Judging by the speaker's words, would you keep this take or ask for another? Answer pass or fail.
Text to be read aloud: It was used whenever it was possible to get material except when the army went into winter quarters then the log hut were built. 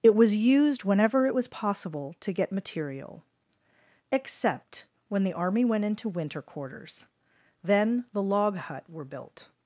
pass